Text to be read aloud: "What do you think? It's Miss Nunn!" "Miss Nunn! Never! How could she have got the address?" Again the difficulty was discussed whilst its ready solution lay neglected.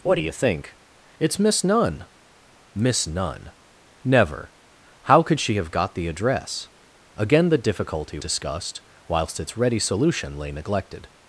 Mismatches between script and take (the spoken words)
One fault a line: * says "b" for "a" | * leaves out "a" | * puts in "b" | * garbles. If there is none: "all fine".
* leaves out "was"